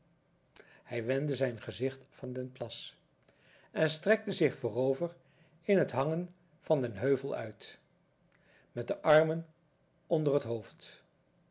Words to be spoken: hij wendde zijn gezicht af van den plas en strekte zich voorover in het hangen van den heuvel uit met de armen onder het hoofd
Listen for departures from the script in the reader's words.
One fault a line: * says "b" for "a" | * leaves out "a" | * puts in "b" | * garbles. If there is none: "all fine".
* leaves out "af"